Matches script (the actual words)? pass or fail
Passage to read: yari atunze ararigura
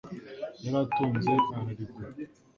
pass